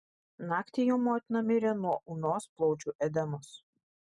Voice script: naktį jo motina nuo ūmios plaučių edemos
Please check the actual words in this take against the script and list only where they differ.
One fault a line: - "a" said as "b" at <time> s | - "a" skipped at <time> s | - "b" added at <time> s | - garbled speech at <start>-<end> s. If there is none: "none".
- "mirė" added at 1.5 s